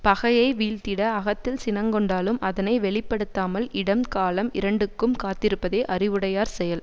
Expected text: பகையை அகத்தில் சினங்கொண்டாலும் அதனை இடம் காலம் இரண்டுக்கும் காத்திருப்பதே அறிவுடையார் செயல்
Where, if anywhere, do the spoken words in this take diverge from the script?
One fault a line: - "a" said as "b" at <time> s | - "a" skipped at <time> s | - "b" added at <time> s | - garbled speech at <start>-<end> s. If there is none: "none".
- "வீழ்த்திட" added at 0.5 s
- "வெளி படுத்தாமல்" added at 2.8 s